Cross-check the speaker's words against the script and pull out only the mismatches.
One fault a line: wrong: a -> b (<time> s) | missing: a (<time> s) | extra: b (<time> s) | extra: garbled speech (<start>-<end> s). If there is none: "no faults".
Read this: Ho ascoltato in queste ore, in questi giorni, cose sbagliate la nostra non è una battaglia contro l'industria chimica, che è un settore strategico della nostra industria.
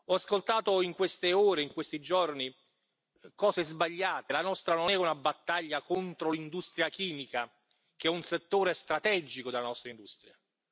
no faults